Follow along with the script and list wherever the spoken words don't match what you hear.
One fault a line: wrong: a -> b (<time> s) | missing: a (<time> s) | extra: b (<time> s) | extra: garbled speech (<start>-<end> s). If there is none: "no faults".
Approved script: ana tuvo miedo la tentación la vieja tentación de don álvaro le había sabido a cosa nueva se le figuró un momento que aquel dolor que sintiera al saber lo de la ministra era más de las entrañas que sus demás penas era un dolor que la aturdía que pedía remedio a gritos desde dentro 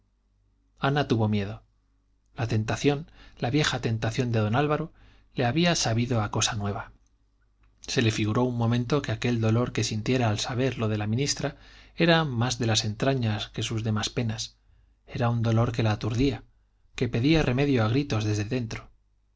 no faults